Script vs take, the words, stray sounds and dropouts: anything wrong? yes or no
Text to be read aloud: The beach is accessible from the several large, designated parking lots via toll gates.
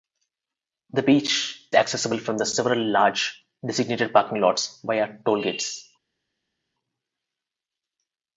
yes